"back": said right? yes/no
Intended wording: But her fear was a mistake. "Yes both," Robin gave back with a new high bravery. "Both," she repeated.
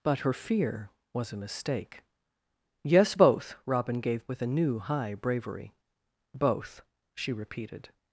no